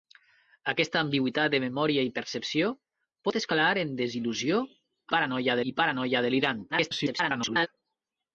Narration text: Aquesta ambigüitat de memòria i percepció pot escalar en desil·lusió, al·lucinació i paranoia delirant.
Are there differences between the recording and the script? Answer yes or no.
yes